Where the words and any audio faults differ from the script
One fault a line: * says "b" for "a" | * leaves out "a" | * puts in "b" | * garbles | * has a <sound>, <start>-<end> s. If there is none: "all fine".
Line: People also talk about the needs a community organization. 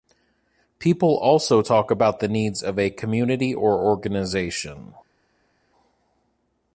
* puts in "of"
* puts in "or"